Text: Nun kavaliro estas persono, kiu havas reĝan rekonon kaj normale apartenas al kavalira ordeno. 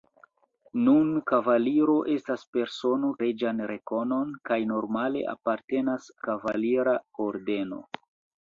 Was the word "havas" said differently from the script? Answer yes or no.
yes